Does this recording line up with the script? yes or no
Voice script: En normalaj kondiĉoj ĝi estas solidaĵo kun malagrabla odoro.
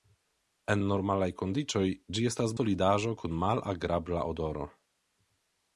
yes